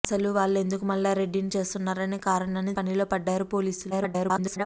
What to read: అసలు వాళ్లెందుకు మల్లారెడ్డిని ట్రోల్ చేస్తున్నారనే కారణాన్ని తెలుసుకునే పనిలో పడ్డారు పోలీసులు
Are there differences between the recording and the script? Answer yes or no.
yes